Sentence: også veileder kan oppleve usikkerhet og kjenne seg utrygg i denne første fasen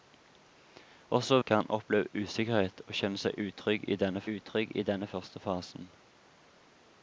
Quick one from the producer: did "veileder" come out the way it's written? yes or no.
no